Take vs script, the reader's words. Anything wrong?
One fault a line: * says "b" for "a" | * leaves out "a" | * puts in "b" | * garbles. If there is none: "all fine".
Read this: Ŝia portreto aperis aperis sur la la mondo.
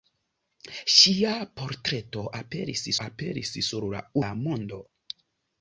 all fine